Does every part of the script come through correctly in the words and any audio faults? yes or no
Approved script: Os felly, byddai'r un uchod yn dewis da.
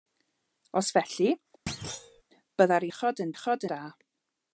no